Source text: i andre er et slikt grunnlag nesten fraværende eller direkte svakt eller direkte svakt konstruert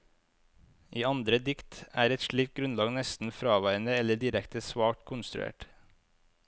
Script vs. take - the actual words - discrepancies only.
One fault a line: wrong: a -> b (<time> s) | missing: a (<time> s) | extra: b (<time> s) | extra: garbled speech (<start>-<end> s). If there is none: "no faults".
extra: dikt (1.5 s)
missing: eller direkte svakt (5.0 s)